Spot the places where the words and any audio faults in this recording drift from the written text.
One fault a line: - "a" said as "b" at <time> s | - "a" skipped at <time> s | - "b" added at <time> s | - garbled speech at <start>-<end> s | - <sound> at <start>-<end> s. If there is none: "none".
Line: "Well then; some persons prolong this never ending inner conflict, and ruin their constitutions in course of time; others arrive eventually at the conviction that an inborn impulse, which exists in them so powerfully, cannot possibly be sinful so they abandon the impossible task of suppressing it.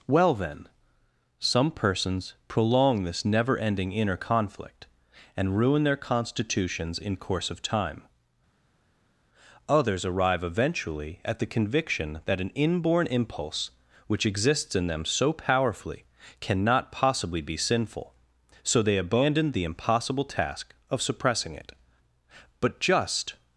- "But just" added at 22.6 s